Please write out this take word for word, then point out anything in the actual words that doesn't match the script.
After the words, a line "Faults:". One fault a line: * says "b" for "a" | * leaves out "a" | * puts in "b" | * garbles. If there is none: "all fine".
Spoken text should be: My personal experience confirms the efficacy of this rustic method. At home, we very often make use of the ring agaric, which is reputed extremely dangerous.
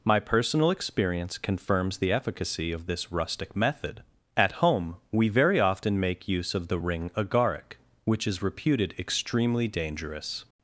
My personal experience confirms the efficacy of this rustic method. At home, we very often make use of the ring agaric, which is reputed extremely dangerous.
Faults:
all fine